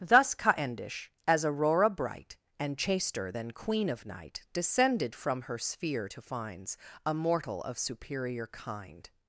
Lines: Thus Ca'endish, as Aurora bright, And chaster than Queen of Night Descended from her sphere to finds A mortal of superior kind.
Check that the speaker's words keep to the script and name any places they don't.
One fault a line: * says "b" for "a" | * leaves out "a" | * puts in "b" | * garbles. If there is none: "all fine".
all fine